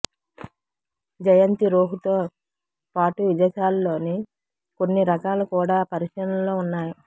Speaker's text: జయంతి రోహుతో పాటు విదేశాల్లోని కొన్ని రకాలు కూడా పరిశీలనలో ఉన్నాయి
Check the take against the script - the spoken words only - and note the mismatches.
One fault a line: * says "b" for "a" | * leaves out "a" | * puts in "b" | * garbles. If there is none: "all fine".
all fine